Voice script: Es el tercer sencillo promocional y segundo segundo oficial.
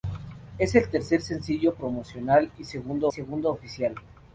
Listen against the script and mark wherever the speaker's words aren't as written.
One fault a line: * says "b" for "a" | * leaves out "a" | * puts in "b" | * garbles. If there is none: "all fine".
all fine